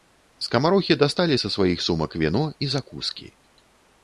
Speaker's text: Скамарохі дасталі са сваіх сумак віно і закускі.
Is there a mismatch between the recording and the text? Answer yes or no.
no